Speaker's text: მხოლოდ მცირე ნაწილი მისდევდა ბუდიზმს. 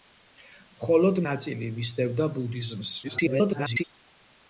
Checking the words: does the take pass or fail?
fail